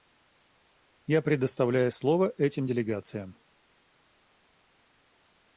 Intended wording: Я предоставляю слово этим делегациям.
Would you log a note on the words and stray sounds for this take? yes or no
no